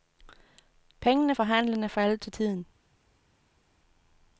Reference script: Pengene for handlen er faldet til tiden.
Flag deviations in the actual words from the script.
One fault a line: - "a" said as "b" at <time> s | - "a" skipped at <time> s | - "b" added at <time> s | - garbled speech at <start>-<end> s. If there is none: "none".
none